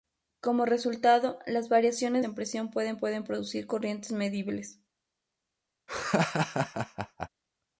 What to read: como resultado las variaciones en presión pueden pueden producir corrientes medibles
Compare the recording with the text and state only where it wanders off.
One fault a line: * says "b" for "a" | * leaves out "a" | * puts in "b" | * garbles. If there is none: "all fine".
all fine